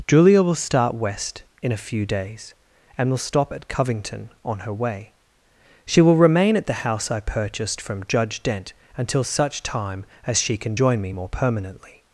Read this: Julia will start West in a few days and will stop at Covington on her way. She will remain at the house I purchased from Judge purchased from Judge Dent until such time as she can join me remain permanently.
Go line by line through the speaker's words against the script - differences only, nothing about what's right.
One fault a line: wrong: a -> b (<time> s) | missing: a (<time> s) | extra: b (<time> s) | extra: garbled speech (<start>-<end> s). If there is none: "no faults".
missing: purchased from Judge (8.4 s)
wrong: remain -> more (11.1 s)